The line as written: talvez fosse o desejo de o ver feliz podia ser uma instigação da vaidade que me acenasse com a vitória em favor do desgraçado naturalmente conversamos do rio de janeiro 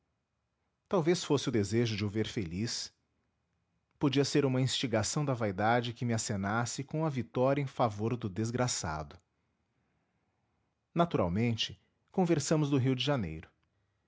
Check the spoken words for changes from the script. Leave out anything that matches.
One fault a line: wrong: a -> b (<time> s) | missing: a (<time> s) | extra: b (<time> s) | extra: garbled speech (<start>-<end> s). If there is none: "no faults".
no faults